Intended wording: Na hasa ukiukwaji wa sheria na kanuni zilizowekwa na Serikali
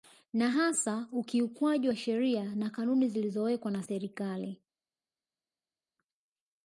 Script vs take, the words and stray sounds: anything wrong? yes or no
no